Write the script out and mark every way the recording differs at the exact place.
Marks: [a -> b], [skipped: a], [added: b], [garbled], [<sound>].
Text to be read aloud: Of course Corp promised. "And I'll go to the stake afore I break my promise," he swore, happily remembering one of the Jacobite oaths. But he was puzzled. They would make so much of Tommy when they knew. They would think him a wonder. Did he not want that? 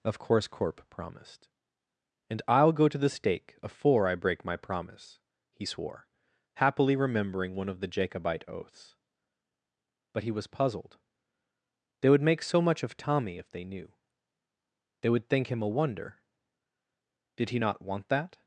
Of course Corp promised. "And I'll go to the stake afore I break my promise," he swore, happily remembering one of the Jacobite oaths. But he was puzzled. They would make so much of Tommy [when -> if] they knew. They would think him a wonder. Did he not want that?